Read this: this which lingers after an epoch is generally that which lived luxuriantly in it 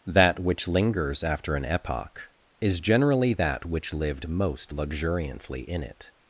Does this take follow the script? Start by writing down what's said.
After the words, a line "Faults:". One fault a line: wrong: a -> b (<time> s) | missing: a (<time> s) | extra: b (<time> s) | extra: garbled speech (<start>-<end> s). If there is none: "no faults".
that which lingers after an epoch is generally that which lived most luxuriantly in it
Faults:
wrong: this -> that (0.1 s)
extra: most (4.3 s)